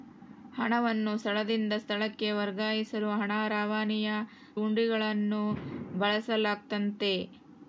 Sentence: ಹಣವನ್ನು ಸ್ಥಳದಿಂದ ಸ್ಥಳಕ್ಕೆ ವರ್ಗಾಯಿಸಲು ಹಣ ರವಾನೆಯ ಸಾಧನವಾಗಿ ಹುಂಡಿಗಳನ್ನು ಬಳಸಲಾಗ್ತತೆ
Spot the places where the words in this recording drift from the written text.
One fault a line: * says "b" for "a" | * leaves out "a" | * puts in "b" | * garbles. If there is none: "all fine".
* leaves out "ಸಾಧನವಾಗಿ"